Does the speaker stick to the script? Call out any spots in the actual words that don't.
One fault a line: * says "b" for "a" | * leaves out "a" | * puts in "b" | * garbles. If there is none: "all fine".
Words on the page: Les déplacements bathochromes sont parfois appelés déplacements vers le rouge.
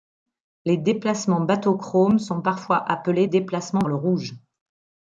* leaves out "vers"